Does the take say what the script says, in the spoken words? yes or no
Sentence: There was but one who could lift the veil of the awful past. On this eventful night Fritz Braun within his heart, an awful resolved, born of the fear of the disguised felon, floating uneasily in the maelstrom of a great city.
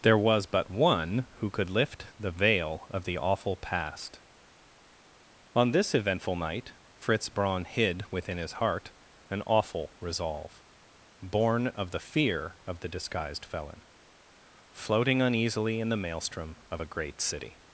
no